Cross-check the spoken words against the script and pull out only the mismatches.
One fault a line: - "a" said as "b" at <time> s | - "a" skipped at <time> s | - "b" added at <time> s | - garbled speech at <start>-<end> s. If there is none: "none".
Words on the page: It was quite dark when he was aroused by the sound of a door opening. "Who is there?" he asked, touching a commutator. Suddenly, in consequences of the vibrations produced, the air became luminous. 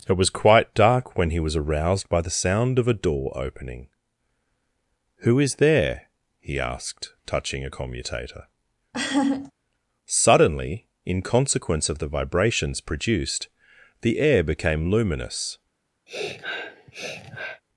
- "consequences" said as "consequence" at 11.2 s